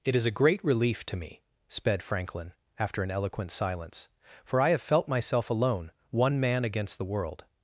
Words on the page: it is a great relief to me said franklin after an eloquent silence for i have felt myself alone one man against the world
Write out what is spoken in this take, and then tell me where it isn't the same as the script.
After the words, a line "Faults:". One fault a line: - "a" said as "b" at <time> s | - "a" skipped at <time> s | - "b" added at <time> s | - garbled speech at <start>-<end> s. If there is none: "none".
it is a great relief to me sped franklin after an eloquent silence for i have felt myself alone one man against the world
Faults:
- "said" said as "sped" at 1.7 s